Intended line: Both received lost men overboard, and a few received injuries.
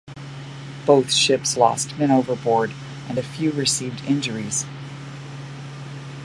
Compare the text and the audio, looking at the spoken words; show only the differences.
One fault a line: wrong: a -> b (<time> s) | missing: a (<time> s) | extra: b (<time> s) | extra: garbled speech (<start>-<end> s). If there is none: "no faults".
wrong: received -> ships (1.1 s)